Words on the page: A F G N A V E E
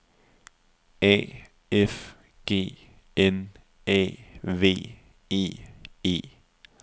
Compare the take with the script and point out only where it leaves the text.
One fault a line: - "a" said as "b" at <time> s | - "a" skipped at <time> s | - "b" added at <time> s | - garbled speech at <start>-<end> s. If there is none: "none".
none